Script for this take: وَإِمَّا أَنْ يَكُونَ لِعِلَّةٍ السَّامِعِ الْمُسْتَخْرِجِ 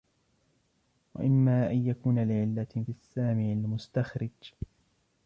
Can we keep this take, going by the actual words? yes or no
yes